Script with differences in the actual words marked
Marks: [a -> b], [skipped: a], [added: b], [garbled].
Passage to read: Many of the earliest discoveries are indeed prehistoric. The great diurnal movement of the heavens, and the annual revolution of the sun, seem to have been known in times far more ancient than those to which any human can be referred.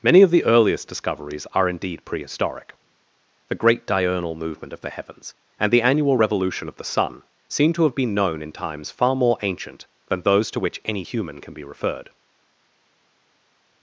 Many of the earliest discoveries are indeed prehistoric. The great diurnal movement of the heavens, and the annual revolution of the sun, seem to have been known in times far more ancient than those to which any human can be referred.